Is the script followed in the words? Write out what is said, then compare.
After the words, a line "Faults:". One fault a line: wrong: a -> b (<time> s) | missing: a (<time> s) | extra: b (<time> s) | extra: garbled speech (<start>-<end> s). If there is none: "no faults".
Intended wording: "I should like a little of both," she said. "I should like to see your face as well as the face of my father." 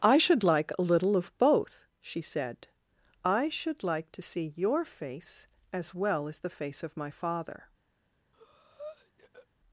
"I should like a little of both," she said. "I should like to see your face as well as the face of my father."
Faults:
no faults